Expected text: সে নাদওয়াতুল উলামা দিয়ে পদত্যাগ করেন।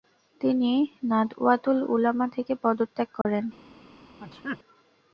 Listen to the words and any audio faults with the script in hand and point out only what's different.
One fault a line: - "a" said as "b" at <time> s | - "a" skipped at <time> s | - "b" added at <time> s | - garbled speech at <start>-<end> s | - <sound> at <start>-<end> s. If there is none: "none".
- "সে" said as "তিনি" at 0.4 s
- "দিয়ে" said as "থেকে" at 2.4 s
- dropout at 3.2-3.3 s
- sneeze at 4.2-4.6 s